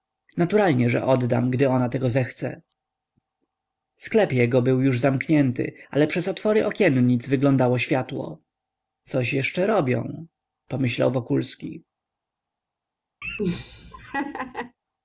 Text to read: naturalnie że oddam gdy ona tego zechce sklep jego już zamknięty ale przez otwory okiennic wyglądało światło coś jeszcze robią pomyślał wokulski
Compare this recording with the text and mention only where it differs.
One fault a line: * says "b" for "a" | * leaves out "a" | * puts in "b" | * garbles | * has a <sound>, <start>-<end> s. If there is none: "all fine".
* puts in "był"
* has a laugh, 13.2-14.8 s